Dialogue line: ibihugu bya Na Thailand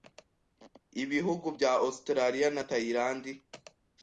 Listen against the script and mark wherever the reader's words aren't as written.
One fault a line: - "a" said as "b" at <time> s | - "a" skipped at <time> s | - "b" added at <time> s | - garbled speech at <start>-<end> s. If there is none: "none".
- "Australia" added at 1.9 s